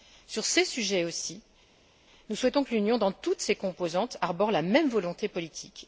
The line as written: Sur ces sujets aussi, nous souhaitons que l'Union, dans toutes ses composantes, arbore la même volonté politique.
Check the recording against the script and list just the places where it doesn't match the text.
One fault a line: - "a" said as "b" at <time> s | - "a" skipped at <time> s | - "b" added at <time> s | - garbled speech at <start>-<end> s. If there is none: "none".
none